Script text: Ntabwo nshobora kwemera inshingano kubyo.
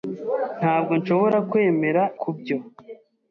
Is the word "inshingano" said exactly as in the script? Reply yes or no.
no